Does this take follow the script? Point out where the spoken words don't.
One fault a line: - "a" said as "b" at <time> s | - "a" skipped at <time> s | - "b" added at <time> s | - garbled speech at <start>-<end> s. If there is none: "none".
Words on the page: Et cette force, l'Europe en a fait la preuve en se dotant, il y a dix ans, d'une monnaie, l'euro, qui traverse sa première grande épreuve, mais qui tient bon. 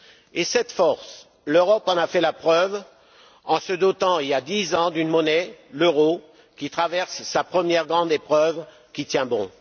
- "mais" skipped at 8.6 s